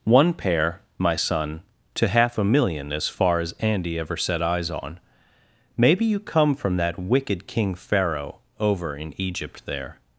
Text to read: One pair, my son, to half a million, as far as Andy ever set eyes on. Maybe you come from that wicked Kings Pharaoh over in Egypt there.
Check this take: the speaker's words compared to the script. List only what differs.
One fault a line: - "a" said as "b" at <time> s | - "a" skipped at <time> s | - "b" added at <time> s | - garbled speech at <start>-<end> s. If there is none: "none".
- "Kings" said as "King" at 7.5 s